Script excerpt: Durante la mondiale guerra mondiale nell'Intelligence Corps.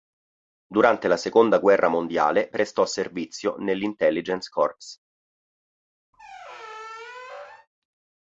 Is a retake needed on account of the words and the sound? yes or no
yes